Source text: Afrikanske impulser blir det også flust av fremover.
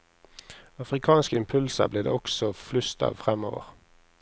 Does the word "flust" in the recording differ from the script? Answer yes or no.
no